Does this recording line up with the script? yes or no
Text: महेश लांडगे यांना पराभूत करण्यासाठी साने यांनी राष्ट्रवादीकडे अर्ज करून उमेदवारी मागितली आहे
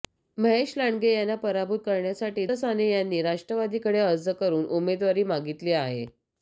yes